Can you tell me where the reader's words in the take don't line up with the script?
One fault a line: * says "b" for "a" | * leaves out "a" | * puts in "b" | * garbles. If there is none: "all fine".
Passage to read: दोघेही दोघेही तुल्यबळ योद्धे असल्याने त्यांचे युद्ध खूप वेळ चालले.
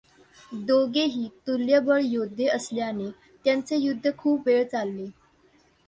* leaves out "दोघेही"